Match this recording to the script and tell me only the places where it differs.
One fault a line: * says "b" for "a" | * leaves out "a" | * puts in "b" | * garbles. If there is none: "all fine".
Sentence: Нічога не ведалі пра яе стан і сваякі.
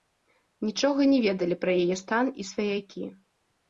all fine